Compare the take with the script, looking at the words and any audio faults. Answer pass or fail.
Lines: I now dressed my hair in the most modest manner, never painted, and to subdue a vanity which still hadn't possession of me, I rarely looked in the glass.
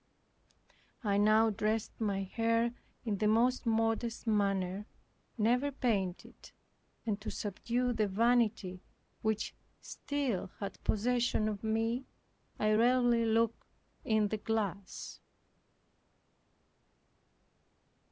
fail